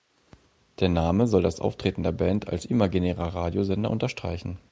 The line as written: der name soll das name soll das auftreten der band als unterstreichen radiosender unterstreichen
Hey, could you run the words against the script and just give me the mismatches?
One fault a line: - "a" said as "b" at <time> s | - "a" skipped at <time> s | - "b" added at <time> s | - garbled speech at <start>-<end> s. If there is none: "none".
- "name soll das" skipped at 1.6 s
- "unterstreichen" said as "imaginärer" at 2.6 s